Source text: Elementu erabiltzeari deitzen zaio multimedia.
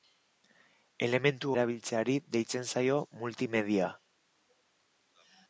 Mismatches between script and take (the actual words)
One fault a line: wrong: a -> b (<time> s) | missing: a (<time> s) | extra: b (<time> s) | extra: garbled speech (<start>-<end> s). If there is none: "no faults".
no faults